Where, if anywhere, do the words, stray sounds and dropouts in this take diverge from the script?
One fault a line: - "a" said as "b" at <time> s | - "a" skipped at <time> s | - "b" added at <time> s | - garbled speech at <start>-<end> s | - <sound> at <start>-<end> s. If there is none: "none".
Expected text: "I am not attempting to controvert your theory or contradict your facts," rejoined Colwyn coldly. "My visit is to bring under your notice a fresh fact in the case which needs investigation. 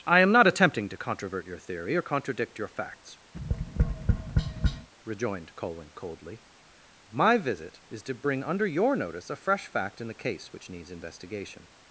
- tap at 3.3-4.9 s